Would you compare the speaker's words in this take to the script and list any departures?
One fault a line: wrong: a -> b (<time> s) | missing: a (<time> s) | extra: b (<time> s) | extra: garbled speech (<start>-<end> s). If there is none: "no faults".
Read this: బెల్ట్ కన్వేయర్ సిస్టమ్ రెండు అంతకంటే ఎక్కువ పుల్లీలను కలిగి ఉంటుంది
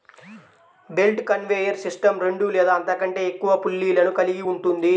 extra: లేదా (2.5 s)